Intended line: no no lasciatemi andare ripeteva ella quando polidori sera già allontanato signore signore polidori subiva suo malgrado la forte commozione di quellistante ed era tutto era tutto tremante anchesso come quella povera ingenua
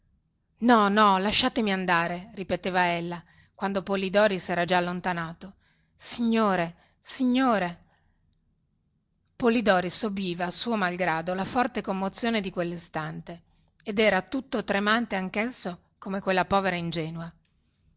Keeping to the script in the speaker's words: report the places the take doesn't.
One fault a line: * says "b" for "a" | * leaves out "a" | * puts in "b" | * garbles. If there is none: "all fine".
* leaves out "era tutto"